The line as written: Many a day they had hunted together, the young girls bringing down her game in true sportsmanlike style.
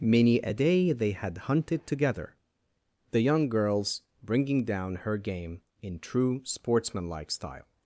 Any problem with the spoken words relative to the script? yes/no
no